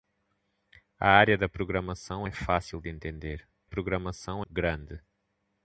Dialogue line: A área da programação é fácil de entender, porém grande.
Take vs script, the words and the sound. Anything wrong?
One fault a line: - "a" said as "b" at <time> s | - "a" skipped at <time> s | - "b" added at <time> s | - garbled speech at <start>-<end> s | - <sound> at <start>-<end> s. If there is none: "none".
- "porém" said as "programação" at 3.6 s